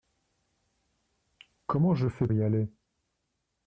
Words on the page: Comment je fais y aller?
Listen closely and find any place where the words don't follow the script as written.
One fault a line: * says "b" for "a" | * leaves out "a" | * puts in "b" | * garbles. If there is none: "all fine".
all fine